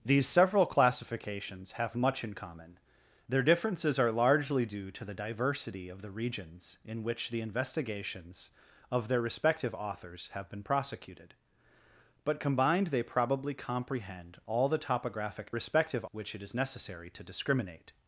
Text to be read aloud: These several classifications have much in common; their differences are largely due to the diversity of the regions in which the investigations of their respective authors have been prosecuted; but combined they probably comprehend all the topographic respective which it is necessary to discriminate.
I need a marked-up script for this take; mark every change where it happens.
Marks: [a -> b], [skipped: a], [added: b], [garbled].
These several classifications have much in common; their differences are largely due to the diversity of the regions in which the investigations of their respective authors have been prosecuted; but combined they probably comprehend all the topographic respective which it is necessary to discriminate.